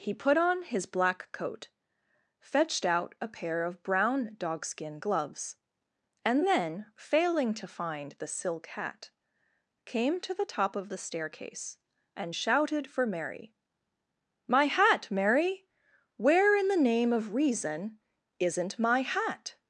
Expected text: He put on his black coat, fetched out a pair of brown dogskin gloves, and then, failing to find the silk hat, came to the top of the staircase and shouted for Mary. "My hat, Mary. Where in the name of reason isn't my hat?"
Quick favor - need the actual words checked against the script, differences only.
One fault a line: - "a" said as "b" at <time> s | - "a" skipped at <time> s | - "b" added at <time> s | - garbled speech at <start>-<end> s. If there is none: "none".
none